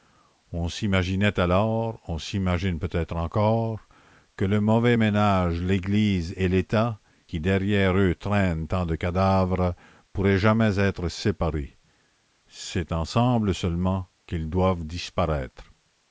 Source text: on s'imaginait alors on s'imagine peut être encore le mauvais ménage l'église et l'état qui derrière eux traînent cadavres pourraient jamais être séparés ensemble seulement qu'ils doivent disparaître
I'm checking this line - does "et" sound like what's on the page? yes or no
yes